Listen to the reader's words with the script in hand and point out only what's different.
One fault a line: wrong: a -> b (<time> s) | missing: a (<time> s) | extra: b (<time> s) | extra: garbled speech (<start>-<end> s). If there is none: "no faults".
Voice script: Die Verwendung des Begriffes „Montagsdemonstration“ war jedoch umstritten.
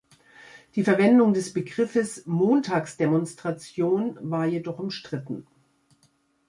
no faults